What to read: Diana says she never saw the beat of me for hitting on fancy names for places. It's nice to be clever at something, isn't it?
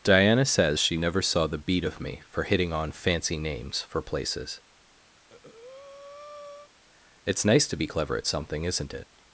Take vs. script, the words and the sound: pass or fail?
fail